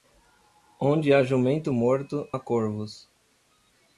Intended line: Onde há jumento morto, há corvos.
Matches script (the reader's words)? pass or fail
pass